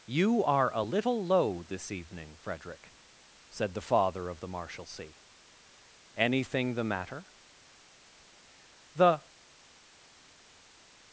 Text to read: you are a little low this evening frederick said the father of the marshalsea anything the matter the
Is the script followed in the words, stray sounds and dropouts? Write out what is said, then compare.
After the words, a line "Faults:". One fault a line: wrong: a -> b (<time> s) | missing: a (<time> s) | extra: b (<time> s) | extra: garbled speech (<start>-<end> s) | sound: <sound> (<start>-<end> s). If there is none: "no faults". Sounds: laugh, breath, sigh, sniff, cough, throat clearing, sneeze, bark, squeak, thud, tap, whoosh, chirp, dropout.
you are a little low this evening frederick said the father of the marshalsea anything the matter the
Faults:
no faults